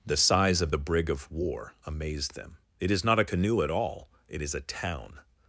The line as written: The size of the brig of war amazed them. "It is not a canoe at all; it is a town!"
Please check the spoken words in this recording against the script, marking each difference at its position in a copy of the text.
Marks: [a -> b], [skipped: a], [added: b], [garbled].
The size of the brig of war amazed them. "It is not a canoe at all; it is a town!"